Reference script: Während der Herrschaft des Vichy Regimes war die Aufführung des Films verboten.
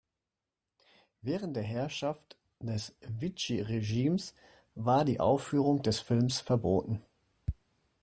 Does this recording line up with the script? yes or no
yes